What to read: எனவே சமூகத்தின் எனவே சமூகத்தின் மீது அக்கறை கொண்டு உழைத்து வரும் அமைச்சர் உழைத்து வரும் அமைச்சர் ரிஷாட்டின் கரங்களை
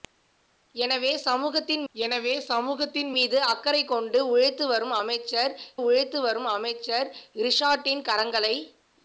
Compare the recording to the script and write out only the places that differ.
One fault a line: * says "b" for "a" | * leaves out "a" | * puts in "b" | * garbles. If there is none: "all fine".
all fine